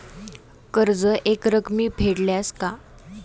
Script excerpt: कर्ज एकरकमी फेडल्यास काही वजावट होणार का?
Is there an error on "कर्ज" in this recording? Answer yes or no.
no